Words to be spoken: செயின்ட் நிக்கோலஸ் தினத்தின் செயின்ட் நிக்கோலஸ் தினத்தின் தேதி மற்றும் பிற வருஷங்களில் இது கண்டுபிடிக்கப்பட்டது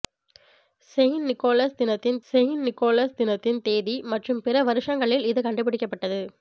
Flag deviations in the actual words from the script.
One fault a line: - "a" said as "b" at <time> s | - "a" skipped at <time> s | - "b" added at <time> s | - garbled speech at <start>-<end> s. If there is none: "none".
none